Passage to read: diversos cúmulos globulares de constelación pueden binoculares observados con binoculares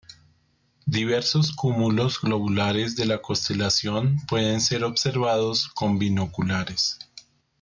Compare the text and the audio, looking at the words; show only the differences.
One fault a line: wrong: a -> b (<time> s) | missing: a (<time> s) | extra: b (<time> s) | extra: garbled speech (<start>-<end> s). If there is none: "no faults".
extra: la (3.0 s)
wrong: binoculares -> ser (4.6 s)